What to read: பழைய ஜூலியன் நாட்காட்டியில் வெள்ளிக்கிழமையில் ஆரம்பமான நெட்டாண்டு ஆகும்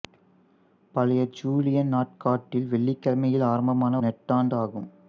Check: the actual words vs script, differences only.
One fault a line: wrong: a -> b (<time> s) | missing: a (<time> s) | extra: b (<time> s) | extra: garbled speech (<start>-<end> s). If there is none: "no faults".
no faults